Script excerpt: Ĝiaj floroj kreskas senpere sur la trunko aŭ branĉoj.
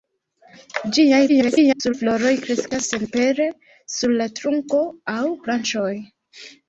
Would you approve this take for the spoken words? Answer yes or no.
no